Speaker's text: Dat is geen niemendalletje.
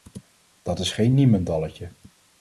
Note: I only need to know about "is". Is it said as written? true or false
true